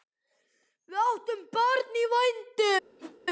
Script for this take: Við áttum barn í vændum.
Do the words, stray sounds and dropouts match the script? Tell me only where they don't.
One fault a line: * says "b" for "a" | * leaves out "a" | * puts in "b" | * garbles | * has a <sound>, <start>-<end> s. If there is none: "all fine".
* has a whoosh, 3.0-3.2 s